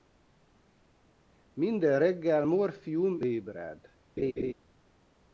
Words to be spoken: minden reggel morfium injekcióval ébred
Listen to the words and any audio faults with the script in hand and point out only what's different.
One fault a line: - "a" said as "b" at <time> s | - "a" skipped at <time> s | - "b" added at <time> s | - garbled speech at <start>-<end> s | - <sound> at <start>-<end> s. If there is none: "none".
- "injekcióval" skipped at 3.2 s
- laugh at 4.2-4.5 s